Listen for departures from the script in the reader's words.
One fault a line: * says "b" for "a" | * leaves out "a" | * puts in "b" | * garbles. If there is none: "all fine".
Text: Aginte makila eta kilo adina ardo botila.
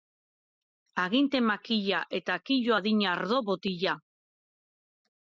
all fine